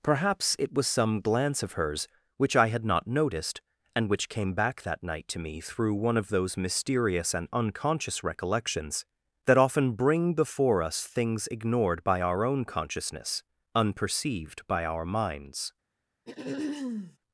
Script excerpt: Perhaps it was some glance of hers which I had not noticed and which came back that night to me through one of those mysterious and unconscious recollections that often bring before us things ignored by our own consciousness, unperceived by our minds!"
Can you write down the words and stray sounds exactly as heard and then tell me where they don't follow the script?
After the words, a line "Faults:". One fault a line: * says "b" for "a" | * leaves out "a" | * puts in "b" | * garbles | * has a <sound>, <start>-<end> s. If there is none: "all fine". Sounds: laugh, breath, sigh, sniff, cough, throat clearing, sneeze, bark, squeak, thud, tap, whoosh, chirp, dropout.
Perhaps it was some glance of hers which I had not noticed and which came back that night to me through one of those mysterious and unconscious recollections that often bring before us things ignored by our own consciousness, unperceived by our minds!"
Faults:
* has a throat clearing, 16.2-17.2 s